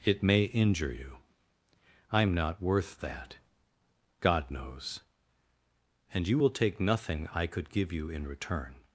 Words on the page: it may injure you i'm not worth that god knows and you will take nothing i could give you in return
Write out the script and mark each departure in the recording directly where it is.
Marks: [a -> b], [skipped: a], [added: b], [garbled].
it may injure you i'm not worth that god knows and you will take nothing i could give you in return